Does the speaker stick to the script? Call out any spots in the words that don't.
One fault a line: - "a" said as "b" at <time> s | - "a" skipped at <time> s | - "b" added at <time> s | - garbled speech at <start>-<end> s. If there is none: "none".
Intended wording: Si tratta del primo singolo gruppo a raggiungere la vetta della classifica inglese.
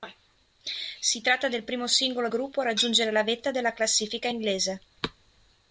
none